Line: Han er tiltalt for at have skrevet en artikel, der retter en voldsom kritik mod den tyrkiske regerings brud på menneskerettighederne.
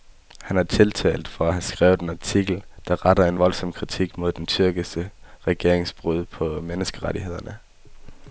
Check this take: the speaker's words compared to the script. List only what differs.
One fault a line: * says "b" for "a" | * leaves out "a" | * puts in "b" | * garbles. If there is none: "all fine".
all fine